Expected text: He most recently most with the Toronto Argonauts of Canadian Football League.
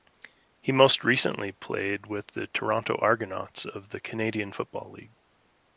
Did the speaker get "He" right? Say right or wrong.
right